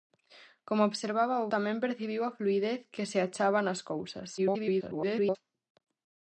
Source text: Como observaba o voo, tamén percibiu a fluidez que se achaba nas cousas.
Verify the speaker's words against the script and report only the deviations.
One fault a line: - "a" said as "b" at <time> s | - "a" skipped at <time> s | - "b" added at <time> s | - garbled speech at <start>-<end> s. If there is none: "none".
- "voo" skipped at 1.5 s
- garbled speech at 4.4-5.4 s